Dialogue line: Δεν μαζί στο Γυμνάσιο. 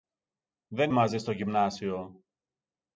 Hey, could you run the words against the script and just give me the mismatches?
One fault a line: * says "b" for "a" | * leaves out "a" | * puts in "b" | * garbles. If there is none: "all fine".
all fine